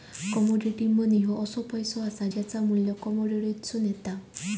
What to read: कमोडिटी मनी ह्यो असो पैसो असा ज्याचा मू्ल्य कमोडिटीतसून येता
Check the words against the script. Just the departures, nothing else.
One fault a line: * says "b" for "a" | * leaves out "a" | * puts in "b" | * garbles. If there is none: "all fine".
all fine